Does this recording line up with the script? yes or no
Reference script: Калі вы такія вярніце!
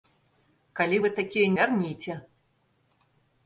yes